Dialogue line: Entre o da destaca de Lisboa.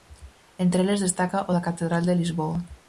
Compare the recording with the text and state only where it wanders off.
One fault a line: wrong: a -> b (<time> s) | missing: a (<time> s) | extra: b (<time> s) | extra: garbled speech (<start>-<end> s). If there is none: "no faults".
extra: eles destaca (0.8 s)
wrong: destaca -> catedral (1.7 s)